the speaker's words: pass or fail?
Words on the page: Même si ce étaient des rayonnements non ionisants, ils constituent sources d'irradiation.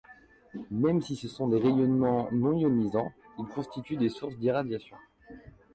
fail